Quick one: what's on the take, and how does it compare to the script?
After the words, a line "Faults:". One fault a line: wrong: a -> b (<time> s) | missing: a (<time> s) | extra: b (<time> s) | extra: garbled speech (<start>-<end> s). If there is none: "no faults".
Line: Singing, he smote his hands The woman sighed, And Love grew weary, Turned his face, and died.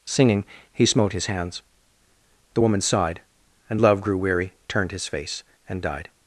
Singing, he smote his hands The woman sighed, And Love grew weary, Turned his face, and died.
Faults:
no faults